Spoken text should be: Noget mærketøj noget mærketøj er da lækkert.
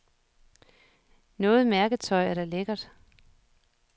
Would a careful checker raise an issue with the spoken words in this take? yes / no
yes